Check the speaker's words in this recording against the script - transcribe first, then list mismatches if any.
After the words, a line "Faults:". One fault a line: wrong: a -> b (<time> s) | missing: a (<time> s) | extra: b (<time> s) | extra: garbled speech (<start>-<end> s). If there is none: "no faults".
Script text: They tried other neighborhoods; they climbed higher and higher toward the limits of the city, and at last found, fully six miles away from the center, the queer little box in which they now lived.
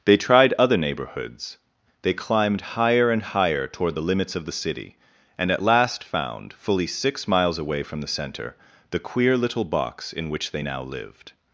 They tried other neighborhoods; they climbed higher and higher toward the limits of the city, and at last found, fully six miles away from the center, the queer little box in which they now lived.
Faults:
no faults